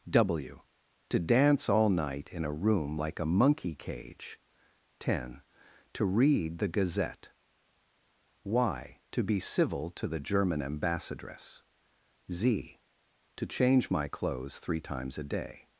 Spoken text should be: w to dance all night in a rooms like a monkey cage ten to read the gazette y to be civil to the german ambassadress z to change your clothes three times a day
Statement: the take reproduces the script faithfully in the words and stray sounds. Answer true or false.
false